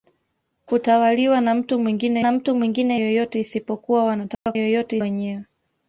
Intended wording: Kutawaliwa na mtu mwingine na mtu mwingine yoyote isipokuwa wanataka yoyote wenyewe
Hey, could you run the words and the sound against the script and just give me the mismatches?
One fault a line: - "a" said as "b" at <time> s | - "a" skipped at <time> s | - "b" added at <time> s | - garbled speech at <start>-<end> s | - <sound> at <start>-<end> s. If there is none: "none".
- dropout at 4.3-4.5 s